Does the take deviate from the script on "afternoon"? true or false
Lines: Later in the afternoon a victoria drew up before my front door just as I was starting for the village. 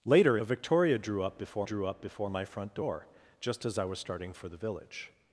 true